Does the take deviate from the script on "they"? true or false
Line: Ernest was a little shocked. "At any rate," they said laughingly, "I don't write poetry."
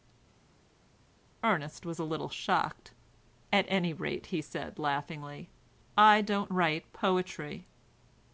true